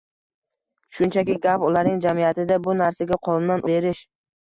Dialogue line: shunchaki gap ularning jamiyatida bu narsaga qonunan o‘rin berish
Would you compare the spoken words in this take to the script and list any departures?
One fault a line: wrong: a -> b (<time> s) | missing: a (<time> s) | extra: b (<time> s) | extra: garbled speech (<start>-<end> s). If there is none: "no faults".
missing: o‘rin (3.6 s)